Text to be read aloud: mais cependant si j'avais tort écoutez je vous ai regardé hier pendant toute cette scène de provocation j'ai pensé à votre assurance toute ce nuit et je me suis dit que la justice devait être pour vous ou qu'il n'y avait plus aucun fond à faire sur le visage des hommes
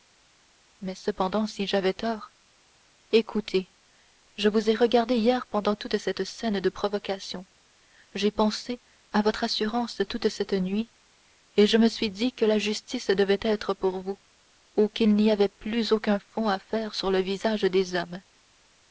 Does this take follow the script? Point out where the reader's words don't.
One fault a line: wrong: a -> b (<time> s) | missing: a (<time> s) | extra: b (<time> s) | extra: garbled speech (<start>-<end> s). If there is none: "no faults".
wrong: ce -> cette (10.3 s)